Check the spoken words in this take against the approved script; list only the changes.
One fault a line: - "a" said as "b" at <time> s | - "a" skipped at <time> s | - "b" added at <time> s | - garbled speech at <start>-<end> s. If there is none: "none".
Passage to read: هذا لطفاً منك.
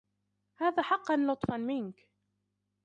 - "حقاً" added at 0.8 s